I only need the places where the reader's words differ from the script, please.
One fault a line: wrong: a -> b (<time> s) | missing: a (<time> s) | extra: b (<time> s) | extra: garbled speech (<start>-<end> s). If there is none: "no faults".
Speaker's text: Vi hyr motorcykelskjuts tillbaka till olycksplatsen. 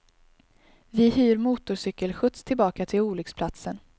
no faults